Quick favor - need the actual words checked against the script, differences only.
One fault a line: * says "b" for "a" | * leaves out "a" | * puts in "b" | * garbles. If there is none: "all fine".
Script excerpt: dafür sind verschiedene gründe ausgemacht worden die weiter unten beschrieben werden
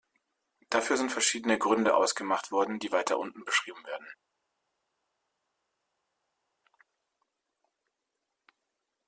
all fine